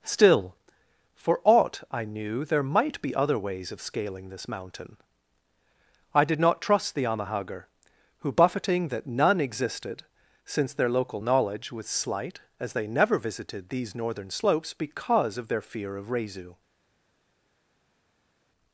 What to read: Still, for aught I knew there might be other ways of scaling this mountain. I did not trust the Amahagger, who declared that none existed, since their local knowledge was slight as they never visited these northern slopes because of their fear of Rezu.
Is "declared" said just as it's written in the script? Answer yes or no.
no